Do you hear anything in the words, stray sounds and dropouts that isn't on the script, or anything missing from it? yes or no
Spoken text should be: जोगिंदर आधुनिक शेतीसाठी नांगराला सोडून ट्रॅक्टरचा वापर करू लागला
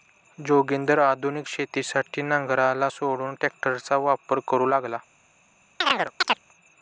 yes